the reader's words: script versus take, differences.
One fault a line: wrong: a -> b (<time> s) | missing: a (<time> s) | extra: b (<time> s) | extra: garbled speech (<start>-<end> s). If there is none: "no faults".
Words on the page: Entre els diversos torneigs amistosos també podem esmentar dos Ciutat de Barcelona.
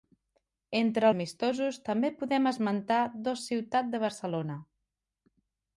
missing: els diversos torneigs (1.1 s)